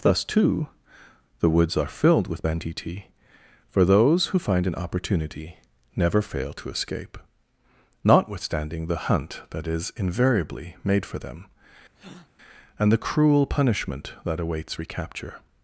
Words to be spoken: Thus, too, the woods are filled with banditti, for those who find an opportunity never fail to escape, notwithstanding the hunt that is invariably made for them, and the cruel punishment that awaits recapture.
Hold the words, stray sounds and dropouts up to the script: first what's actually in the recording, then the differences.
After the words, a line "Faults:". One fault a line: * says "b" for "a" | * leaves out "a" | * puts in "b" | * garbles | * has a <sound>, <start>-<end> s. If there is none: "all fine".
Thus, too, the woods are filled with banditti, for those who find an opportunity never fail to escape, notwithstanding the hunt that is invariably made for them, and the cruel punishment that awaits recapture.
Faults:
* has a breath, 12.0-12.3 s